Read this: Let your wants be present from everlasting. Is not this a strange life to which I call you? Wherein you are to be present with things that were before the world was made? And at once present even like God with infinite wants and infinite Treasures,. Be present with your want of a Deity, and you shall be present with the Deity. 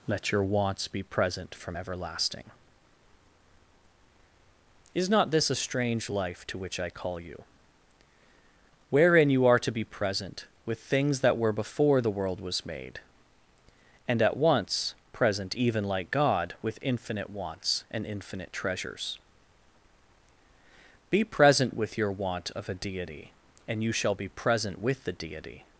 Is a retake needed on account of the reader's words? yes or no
no